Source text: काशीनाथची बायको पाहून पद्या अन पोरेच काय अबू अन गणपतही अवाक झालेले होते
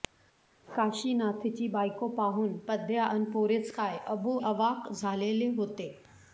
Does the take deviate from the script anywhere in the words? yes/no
yes